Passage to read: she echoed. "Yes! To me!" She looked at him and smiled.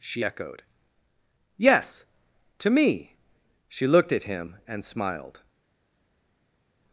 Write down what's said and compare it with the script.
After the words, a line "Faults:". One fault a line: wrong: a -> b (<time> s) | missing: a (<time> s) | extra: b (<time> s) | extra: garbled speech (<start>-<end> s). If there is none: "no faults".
she echoed. "Yes! To me!" She looked at him and smiled.
Faults:
no faults